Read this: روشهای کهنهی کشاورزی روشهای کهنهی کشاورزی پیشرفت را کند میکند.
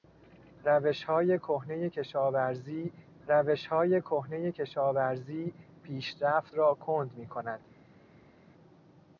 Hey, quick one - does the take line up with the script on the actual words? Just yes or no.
yes